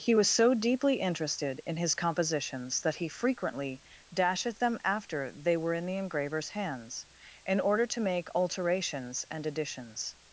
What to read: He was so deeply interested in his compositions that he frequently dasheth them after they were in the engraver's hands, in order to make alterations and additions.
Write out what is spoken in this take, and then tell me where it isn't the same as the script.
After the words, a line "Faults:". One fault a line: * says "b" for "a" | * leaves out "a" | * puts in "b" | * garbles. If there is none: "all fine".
He was so deeply interested in his compositions that he frequently dasheth them after they were in the engraver's hands, in order to make alterations and additions.
Faults:
all fine